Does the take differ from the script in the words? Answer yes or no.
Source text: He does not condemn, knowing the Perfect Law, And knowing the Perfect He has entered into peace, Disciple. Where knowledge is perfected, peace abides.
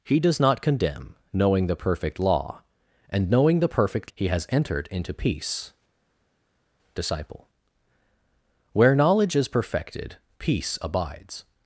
no